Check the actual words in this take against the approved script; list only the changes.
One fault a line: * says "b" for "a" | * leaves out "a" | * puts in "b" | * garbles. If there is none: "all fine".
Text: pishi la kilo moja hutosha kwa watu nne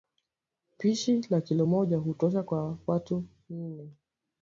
all fine